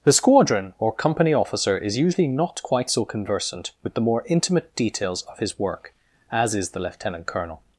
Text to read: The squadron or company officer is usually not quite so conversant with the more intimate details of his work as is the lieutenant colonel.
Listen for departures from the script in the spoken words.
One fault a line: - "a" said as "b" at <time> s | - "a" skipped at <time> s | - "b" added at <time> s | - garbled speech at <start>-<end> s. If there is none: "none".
none